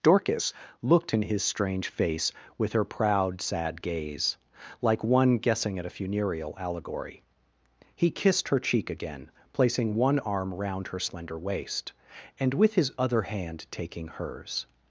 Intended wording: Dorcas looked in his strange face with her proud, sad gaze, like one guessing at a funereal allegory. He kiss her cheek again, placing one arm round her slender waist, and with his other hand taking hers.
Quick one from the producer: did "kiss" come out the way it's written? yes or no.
no